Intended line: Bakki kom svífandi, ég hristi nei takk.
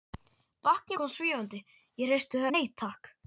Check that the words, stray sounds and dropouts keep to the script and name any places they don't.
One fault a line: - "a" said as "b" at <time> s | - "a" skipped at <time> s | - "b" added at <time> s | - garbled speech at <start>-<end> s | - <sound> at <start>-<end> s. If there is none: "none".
none